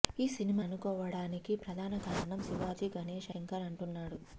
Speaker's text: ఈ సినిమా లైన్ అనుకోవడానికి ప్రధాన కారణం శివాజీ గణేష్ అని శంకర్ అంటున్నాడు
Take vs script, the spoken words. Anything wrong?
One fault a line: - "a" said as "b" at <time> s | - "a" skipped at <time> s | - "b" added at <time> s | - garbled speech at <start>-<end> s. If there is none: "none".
- "లైన్" skipped at 0.6 s
- "అని" skipped at 3.3 s